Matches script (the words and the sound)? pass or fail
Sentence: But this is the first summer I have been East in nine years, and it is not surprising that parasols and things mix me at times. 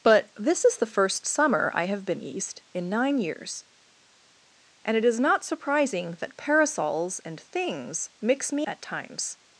pass